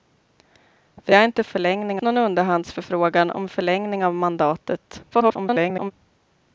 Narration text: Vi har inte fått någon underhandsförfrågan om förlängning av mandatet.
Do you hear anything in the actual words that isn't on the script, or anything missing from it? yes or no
yes